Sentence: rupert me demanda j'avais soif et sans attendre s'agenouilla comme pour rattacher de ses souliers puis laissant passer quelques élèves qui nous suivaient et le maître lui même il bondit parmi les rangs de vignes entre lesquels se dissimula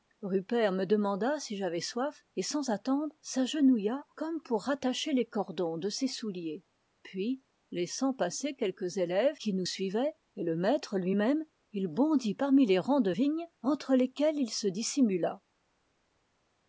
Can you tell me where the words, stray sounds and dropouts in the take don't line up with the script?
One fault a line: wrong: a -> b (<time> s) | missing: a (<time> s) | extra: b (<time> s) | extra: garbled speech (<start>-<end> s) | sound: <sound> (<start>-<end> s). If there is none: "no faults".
extra: si (1.4 s)
extra: les cordons (5.1 s)
extra: il (14.4 s)